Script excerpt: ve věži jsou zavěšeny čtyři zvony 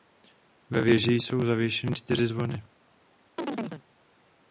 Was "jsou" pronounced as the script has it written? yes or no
yes